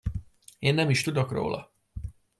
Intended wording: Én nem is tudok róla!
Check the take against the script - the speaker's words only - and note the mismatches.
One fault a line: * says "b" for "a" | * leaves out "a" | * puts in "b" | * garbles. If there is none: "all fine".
all fine